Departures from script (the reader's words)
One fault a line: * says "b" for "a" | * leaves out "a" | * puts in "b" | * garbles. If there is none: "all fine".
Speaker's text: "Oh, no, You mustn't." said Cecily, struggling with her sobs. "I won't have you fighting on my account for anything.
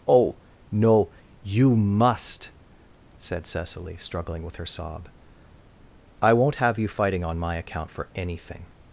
* says "must" for "mustn't"
* says "sob" for "sobs"